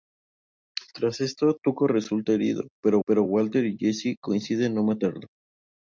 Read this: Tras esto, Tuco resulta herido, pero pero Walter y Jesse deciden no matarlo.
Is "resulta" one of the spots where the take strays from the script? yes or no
no